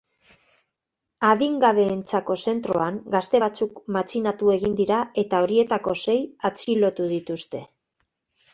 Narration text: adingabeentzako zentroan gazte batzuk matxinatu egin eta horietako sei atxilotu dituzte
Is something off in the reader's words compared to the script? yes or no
yes